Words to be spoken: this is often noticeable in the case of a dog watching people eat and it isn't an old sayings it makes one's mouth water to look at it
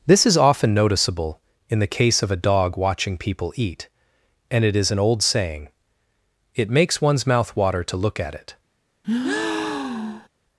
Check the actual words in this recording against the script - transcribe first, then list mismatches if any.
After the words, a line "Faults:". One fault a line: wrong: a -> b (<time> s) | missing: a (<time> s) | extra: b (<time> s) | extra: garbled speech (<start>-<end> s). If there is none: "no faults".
this is often noticeable in the case of a dog watching people eat and it is an old saying it makes one's mouth water to look at it
Faults:
wrong: isn't -> is (4.8 s)
wrong: sayings -> saying (5.2 s)